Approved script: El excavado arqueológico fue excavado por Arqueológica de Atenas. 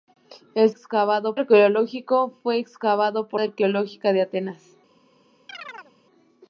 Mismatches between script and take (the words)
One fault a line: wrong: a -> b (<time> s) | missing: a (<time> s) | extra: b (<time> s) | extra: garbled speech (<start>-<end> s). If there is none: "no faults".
no faults